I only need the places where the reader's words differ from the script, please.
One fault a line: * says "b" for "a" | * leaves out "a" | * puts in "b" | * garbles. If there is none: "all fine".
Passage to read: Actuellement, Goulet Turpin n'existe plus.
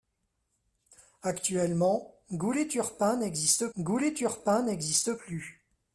* puts in "Goulet Turpin n'existe"